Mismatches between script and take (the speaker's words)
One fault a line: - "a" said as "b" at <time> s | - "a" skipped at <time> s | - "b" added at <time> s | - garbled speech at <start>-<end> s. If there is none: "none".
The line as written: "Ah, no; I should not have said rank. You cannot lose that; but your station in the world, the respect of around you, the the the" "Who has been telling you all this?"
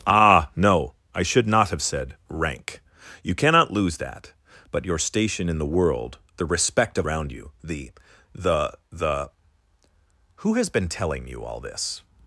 none